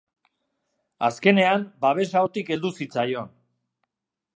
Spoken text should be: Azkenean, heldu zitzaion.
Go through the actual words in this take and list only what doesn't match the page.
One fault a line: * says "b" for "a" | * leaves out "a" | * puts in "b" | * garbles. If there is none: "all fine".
* puts in "babesa hortik"